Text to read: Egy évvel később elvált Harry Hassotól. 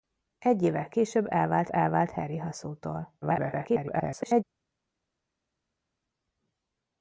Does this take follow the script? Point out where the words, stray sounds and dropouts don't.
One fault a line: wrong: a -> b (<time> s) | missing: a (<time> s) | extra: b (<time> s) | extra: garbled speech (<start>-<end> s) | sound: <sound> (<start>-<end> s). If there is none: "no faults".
extra: elvált (1.7 s)
extra: garbled speech (3.2-4.4 s)